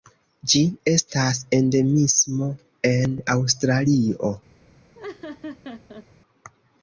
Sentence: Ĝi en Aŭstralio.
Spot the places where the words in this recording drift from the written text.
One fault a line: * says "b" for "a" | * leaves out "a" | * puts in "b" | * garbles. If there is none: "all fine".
* puts in "estas endemismo"